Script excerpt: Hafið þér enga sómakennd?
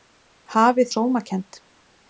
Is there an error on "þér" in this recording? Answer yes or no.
yes